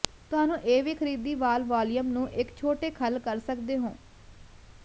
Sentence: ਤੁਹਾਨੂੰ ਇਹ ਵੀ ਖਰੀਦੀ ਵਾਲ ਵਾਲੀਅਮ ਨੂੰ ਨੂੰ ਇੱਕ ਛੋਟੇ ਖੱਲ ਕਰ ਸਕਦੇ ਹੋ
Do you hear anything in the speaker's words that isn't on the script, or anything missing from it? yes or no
yes